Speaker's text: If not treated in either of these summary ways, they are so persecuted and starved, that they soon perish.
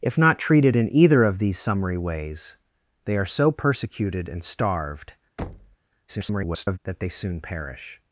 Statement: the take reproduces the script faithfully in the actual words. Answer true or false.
false